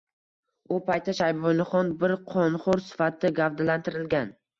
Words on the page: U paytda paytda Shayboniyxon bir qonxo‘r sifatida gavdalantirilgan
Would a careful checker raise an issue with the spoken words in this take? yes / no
yes